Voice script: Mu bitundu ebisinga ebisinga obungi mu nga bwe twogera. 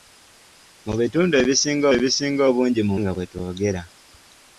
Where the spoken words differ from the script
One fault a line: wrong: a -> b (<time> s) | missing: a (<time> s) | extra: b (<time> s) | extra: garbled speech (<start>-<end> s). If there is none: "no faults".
no faults